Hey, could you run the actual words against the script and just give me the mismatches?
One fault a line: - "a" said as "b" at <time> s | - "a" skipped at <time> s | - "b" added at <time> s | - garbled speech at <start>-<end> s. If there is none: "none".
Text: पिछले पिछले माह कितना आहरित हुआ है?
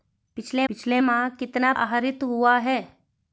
none